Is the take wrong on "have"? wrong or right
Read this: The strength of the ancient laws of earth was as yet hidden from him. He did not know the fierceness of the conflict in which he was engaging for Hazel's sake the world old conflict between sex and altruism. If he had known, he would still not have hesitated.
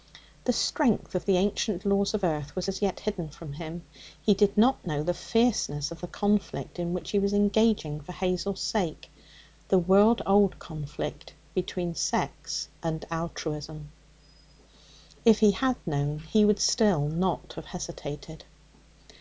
right